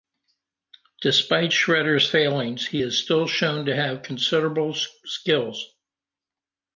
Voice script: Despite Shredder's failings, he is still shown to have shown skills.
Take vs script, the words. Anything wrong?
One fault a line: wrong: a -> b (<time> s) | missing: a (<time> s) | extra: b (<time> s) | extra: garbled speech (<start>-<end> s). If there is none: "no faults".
wrong: shown -> considerable (4.0 s)